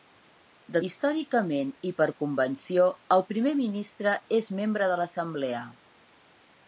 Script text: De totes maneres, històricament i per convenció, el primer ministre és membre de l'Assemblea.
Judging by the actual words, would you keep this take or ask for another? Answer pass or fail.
fail